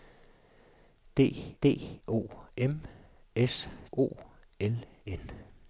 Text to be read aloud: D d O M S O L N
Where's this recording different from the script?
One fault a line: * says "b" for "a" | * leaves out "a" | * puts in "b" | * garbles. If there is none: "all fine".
all fine